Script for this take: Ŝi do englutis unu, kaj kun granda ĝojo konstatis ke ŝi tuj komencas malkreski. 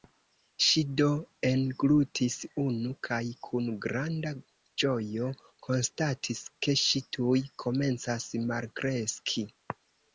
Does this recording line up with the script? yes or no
yes